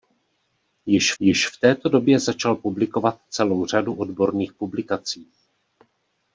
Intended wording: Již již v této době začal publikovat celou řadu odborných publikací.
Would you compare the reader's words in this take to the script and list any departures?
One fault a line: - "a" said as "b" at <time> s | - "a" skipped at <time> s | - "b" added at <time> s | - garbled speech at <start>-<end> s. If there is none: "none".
none